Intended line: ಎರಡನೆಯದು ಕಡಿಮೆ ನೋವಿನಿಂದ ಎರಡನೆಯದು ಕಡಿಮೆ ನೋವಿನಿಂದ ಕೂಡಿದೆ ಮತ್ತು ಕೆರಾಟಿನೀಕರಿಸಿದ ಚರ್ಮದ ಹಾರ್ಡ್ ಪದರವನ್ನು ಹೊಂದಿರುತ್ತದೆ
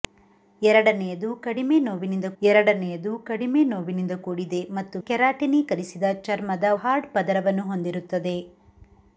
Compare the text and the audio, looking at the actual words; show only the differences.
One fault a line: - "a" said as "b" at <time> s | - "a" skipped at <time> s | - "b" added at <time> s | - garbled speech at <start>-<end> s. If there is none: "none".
none